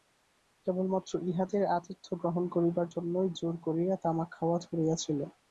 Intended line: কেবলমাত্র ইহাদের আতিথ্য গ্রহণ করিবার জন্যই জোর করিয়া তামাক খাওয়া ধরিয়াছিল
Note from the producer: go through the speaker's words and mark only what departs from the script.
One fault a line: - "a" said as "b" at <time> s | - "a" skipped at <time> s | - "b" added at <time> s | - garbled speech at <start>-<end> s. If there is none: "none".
none